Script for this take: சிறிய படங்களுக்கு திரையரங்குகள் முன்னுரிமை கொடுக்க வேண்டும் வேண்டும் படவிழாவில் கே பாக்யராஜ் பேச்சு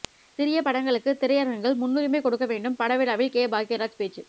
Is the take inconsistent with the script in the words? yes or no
yes